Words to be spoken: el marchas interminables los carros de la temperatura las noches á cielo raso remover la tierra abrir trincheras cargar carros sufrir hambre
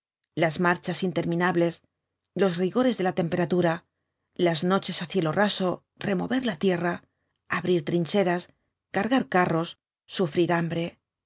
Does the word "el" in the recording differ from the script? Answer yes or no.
yes